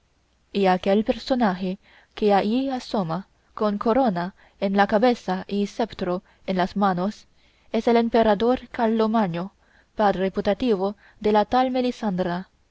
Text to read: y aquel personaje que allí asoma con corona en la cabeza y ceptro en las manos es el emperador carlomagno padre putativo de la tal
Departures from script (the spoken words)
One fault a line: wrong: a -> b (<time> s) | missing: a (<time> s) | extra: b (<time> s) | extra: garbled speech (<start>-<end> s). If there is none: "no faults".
no faults